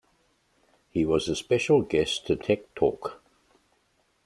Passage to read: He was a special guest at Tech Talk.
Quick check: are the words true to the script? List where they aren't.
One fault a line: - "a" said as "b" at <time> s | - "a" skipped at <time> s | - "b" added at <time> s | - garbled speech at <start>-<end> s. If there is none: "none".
none